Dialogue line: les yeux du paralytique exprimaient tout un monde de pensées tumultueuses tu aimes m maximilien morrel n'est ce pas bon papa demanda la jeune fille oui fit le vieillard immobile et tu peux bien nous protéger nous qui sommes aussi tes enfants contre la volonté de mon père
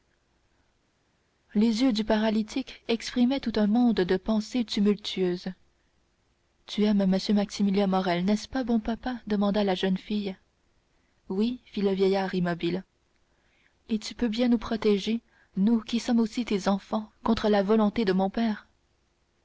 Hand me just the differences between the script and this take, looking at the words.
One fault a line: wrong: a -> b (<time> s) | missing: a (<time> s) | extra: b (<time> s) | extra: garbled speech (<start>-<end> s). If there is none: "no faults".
no faults